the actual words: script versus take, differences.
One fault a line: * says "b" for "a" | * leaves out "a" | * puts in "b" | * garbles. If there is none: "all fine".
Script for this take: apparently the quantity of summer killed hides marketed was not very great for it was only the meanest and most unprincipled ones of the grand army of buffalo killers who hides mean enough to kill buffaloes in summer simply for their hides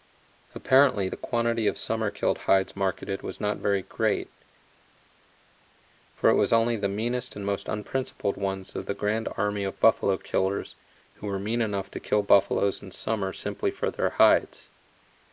* says "were" for "hides"